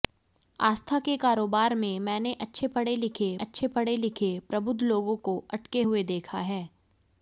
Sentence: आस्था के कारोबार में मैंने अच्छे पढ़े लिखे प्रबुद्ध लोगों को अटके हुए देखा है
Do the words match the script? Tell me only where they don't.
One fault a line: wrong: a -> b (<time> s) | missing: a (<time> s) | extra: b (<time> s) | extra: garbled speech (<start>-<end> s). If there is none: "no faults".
extra: अच्छे पढ़े लिखे (3.4 s)